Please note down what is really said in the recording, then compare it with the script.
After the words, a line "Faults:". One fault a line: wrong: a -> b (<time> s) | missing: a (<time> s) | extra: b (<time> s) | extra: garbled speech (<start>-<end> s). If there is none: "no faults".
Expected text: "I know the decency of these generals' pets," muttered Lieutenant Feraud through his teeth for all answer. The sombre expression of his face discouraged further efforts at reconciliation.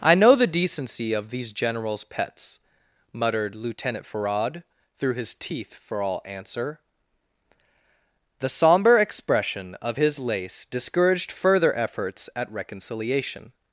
"I know the decency of these generals' pets," muttered Lieutenant Feraud through his teeth for all answer. The sombre expression of his lace discouraged further efforts at reconciliation.
Faults:
wrong: face -> lace (10.2 s)